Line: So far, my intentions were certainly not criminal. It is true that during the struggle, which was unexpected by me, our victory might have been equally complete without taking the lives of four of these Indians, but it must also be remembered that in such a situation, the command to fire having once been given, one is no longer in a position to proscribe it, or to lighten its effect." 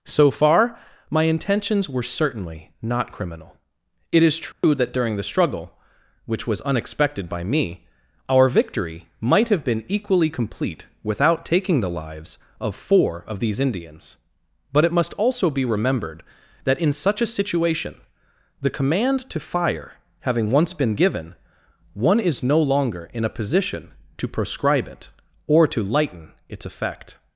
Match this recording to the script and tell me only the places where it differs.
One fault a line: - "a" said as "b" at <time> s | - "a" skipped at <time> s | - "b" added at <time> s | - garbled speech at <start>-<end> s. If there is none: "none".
none